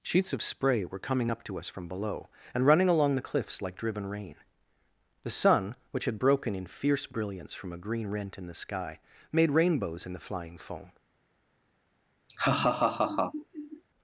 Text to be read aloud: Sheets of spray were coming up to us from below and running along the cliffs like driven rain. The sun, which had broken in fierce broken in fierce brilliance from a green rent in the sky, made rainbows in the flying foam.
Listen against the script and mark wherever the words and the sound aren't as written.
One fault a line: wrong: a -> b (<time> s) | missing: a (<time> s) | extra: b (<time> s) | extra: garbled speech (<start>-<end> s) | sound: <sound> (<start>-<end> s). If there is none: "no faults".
missing: broken in fierce (7.1 s)
sound: laugh (12.3-13.8 s)